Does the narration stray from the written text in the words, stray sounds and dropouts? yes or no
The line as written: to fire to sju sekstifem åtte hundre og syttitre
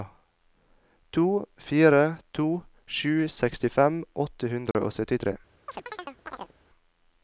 yes